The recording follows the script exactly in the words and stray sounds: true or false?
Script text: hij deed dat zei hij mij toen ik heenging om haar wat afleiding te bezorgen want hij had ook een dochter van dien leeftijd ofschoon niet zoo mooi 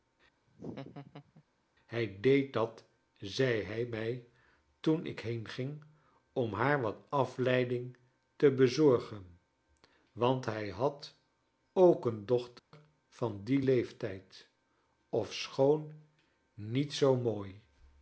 false